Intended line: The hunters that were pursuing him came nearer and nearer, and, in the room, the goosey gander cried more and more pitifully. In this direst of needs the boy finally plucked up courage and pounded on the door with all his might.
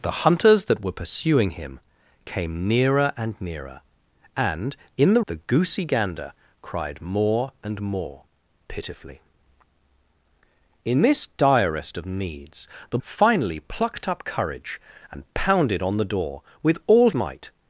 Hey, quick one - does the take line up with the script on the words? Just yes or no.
no